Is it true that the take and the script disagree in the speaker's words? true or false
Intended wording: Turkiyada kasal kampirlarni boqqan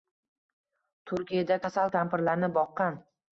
false